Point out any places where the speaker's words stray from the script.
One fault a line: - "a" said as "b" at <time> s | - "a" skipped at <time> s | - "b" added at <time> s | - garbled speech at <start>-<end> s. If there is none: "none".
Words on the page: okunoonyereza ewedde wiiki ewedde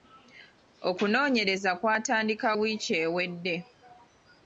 - "ewedde" said as "kw'atandika" at 1.8 s